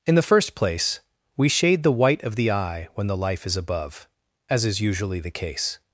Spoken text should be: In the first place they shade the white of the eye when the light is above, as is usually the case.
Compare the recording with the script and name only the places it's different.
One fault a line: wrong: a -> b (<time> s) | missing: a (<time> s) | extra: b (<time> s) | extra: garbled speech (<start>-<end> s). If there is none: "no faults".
wrong: they -> we (1.4 s)
wrong: light -> life (3.2 s)